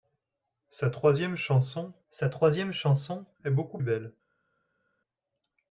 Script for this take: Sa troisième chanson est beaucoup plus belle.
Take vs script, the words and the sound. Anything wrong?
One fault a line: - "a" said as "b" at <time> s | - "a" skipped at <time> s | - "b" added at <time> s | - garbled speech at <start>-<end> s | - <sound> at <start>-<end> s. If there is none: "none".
- "sa troisième chanson" added at 2.1 s
- "plus" skipped at 3.8 s